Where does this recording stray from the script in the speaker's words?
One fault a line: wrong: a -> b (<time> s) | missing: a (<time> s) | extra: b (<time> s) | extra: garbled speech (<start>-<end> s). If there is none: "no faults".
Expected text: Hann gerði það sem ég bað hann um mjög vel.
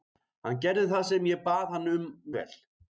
missing: mjög (2.1 s)